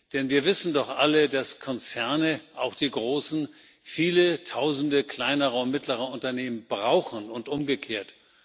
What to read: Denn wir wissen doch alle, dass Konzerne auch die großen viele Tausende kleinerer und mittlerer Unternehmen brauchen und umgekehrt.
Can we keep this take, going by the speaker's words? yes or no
yes